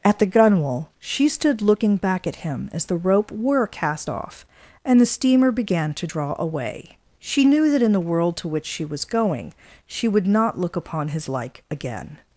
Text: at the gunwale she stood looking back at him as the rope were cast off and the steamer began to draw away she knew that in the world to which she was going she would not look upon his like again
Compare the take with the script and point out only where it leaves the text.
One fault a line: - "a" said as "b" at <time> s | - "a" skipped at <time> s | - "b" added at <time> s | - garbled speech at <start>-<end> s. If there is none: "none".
none